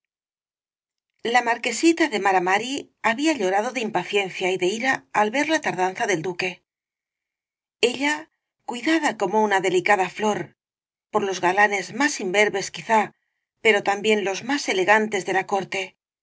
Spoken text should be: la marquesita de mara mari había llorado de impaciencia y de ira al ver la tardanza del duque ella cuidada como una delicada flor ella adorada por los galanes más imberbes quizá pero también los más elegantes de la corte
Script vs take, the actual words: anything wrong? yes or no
yes